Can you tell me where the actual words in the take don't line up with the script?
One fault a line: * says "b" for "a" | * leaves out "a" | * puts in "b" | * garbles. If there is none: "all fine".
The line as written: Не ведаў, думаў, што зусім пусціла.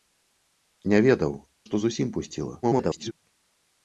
* leaves out "думаў"
* garbles